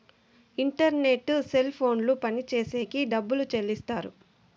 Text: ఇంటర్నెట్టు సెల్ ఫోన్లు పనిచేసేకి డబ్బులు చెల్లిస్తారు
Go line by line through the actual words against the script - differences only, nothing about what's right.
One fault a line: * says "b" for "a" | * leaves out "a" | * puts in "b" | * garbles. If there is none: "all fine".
all fine